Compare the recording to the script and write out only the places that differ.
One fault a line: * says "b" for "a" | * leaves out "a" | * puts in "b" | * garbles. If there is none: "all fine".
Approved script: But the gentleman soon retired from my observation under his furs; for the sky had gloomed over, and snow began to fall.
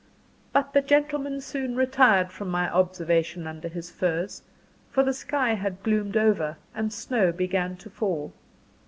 all fine